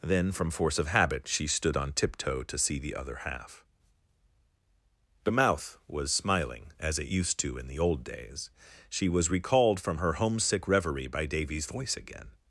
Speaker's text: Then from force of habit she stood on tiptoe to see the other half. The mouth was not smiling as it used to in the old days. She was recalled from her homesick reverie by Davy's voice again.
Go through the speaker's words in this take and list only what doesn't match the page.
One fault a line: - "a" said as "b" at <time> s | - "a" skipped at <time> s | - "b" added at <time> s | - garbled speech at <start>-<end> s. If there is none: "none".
- "not" skipped at 6.1 s